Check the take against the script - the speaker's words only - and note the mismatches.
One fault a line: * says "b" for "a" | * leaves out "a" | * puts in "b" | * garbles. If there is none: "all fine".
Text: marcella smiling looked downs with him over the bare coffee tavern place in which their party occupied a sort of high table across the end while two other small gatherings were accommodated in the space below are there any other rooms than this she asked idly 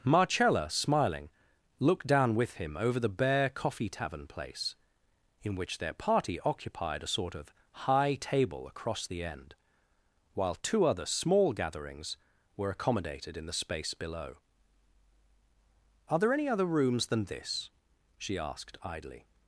* says "down" for "downs"